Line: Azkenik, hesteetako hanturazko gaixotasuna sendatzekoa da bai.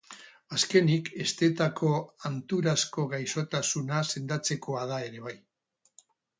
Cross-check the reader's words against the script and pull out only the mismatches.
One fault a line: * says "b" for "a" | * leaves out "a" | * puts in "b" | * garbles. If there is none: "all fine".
* puts in "ere"